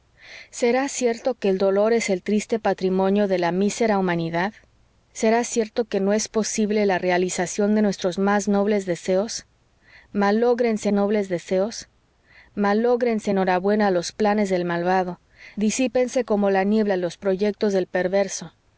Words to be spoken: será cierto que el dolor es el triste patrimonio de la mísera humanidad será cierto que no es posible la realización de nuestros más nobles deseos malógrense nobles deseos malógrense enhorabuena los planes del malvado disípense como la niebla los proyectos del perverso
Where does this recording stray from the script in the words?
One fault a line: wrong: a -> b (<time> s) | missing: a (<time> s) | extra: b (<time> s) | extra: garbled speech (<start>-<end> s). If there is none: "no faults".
no faults